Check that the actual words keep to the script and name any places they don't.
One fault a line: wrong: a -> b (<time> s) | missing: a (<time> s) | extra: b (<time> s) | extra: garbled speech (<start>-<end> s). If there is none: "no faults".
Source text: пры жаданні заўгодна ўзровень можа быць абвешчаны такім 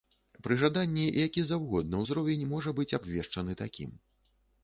extra: які (1.2 s)